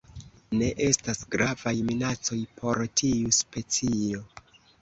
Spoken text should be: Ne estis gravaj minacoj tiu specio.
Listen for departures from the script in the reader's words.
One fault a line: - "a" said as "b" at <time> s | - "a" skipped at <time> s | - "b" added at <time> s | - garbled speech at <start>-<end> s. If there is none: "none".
- "estis" said as "estas" at 0.8 s
- "por" added at 2.6 s